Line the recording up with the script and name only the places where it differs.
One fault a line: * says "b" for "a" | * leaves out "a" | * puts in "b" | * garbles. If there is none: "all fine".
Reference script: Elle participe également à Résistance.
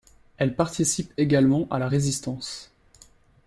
* puts in "la"